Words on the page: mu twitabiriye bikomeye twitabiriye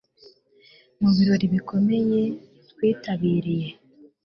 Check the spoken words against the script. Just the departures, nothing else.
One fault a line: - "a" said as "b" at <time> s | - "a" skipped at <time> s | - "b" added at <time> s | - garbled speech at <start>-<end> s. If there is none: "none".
- "twitabiriye" said as "birori" at 1.1 s